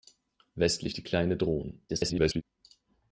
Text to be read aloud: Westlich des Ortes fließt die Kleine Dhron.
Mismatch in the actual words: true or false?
true